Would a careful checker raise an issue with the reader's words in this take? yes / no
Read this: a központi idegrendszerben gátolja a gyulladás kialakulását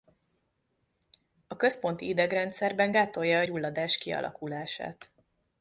no